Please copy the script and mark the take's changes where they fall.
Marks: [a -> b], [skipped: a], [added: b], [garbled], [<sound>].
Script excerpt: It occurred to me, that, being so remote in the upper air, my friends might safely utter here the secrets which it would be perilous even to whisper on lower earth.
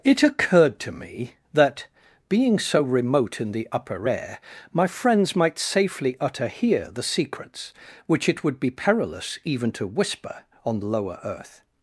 It occurred to me, that, being so remote in the upper air, my friends might safely utter here the secrets which it would be perilous even to whisper on lower earth.